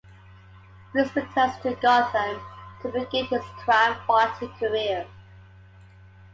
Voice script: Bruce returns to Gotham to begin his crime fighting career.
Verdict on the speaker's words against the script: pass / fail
pass